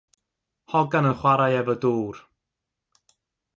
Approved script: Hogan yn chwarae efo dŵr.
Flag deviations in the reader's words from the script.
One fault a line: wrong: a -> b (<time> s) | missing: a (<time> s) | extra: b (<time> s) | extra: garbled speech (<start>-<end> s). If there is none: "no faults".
no faults